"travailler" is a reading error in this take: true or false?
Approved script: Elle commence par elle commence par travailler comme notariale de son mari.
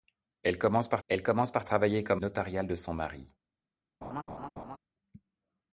false